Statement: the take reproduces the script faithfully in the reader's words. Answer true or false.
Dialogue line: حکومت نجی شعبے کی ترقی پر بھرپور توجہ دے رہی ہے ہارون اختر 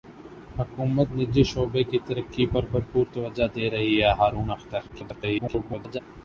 false